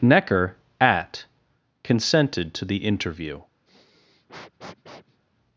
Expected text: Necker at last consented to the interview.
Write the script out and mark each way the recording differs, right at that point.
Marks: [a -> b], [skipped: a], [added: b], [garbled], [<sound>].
Necker at [skipped: last] consented to the interview. [sniff]